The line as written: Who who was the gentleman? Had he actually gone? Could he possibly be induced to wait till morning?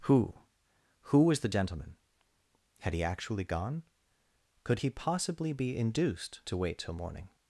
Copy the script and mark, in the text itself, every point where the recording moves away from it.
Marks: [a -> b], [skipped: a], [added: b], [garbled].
Who who was the gentleman? Had he actually gone? Could he possibly be induced to wait till morning?